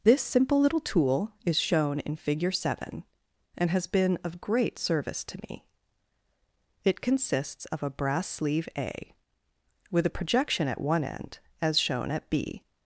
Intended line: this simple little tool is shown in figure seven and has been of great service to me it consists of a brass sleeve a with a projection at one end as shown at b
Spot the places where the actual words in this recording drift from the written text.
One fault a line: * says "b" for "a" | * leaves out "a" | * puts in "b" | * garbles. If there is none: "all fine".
all fine